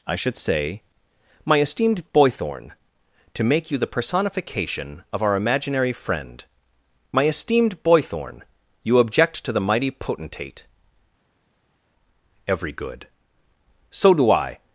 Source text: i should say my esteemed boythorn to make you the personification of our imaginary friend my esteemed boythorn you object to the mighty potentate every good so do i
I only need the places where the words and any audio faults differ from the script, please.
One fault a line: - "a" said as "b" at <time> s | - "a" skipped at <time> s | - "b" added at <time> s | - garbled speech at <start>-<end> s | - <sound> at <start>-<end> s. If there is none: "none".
none